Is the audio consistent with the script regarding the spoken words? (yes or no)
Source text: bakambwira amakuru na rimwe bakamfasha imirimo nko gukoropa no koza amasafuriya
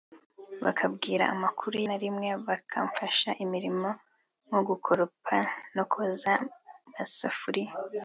yes